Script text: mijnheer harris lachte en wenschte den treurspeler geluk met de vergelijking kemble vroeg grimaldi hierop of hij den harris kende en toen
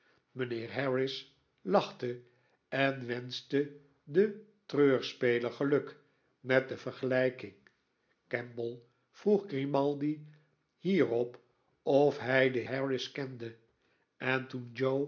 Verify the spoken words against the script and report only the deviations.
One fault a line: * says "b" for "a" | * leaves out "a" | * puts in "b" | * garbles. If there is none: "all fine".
all fine